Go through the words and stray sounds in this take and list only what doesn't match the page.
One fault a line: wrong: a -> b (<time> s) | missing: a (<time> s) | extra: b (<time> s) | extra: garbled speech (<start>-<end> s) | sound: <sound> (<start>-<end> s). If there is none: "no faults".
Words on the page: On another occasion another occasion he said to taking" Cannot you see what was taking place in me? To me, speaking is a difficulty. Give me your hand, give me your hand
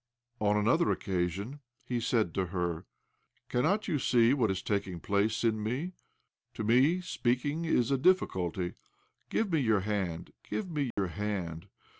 missing: another occasion (1.6 s)
wrong: taking -> her (2.5 s)
wrong: was -> is (4.5 s)
sound: dropout (10.9-11.0 s)